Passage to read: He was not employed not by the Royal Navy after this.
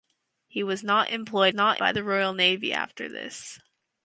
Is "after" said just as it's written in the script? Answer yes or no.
yes